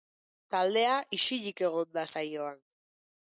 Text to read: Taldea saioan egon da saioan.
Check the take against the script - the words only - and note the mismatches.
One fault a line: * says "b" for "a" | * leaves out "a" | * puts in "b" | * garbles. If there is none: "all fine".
* says "isilik" for "saioan"